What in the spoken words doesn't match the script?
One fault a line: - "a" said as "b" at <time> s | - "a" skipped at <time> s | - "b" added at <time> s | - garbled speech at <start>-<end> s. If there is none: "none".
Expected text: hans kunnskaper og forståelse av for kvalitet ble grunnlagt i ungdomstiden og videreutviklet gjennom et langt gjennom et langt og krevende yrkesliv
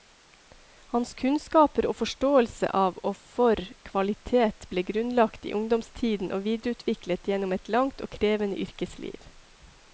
- "og" added at 3.1 s
- "gjennom et langt" skipped at 8.0 s